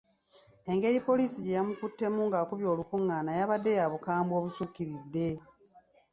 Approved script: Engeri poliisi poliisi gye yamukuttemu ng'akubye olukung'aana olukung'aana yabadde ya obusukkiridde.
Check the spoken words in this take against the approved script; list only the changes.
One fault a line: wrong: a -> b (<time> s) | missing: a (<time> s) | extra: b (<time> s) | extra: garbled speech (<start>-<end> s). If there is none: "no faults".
missing: poliisi (1.4 s)
missing: olukung'aana (3.3 s)
extra: bukambwe (3.9 s)